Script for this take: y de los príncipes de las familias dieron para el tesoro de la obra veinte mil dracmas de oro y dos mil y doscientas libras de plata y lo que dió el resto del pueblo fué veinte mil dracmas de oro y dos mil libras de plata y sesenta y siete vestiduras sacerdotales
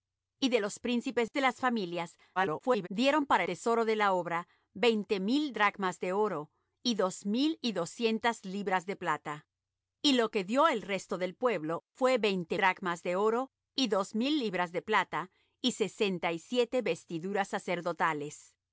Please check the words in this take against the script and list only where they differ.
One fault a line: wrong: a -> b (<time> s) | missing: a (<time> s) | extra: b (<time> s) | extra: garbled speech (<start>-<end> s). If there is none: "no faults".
extra: garbled speech (2.4-2.9 s)
missing: el (3.4 s)
missing: mil (12.6 s)